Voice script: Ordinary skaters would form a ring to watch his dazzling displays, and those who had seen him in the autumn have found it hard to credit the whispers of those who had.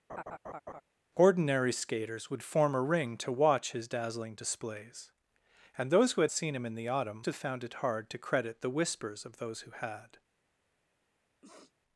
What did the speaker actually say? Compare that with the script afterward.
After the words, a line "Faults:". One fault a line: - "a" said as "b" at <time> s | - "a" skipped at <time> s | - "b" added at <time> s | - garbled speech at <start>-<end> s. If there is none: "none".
Ordinary skaters would form a ring to watch his dazzling displays, and those who had seen him in the autumn have found it hard to credit the whispers of those who had.
Faults:
none